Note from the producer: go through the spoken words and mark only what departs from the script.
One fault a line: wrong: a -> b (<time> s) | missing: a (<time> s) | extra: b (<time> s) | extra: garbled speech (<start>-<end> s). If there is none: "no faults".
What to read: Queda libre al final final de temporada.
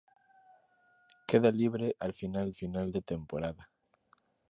no faults